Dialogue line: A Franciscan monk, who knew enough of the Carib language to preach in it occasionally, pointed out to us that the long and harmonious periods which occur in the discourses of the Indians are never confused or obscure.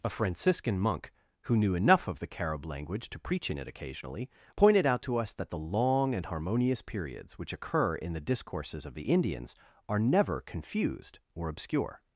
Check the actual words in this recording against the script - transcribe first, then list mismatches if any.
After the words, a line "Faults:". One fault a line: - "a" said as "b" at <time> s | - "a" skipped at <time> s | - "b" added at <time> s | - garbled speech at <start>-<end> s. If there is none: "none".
A Franciscan monk, who knew enough of the Carib language to preach in it occasionally, pointed out to us that the long and harmonious periods which occur in the discourses of the Indians are never confused or obscure.
Faults:
none